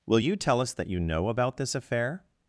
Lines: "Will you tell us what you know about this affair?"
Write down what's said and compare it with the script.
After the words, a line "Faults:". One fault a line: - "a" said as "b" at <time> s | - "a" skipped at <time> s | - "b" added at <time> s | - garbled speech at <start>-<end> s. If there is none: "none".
"Will you tell us that you know about this affair?"
Faults:
- "what" said as "that" at 0.7 s